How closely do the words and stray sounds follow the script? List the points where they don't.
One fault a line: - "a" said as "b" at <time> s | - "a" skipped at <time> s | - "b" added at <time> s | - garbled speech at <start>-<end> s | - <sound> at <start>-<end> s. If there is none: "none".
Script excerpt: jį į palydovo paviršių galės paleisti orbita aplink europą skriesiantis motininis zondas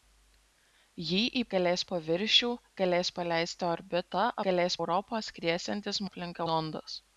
- "palydovo" said as "galės" at 1.6 s
- "aplink" said as "galės" at 4.5 s
- "motininis" said as "aplink" at 6.1 s